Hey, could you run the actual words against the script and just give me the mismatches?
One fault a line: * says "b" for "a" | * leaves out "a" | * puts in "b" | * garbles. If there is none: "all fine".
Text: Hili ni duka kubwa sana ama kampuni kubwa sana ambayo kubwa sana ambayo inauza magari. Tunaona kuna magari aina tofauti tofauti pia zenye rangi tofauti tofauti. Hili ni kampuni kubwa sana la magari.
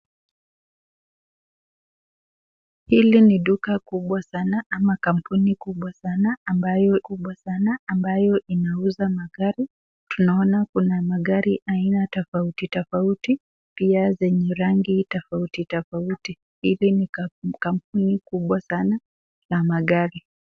all fine